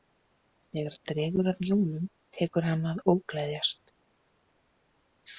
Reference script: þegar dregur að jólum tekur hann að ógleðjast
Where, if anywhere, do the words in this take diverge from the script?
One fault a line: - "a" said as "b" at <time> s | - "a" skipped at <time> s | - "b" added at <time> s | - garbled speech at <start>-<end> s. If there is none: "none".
none